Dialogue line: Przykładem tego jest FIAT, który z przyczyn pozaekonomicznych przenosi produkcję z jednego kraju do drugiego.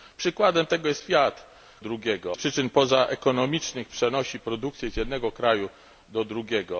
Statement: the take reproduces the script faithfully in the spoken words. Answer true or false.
false